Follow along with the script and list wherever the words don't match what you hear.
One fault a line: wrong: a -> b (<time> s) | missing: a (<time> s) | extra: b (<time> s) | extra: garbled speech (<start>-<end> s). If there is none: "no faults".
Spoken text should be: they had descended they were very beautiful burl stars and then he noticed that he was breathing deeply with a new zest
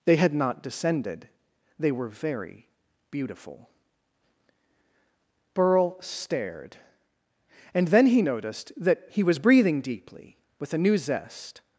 extra: not (0.3 s)
wrong: stars -> stared (6.0 s)